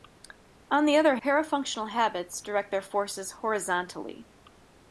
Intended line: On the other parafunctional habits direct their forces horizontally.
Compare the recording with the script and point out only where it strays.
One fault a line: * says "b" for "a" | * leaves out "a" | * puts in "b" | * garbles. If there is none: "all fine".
all fine